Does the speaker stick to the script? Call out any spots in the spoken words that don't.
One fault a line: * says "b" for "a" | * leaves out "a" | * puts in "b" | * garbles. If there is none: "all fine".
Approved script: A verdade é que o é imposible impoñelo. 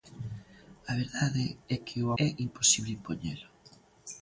all fine